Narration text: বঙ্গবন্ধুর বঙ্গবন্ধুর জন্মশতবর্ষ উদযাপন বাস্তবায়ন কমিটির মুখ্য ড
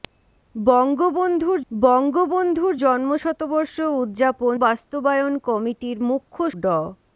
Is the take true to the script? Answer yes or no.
yes